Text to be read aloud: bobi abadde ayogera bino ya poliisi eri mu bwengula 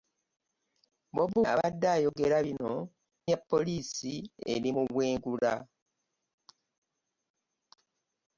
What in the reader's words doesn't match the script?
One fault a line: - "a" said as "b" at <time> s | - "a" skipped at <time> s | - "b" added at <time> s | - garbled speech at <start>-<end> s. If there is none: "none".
none